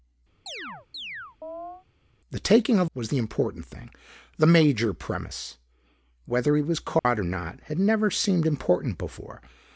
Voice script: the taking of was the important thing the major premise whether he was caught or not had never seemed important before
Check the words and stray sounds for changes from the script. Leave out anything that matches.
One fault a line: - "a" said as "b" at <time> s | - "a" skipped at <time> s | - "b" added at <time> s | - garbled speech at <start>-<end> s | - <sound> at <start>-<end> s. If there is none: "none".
- chirp at 0.5-1.9 s
- dropout at 7.0-7.0 s